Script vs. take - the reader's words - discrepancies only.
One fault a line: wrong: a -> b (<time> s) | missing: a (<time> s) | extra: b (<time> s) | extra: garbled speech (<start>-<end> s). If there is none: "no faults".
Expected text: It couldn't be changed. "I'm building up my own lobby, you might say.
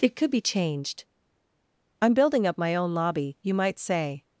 wrong: couldn't -> could (0.1 s)